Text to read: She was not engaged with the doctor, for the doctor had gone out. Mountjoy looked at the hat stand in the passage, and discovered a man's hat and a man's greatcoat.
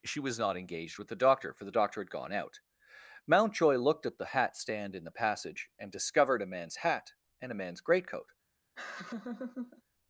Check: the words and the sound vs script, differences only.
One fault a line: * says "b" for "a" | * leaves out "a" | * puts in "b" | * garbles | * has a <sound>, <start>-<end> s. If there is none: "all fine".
* has a laugh, 8.8-9.8 s